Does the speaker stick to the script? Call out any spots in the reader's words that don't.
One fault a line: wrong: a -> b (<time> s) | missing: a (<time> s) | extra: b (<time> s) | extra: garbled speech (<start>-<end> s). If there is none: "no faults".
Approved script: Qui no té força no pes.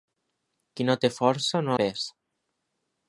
no faults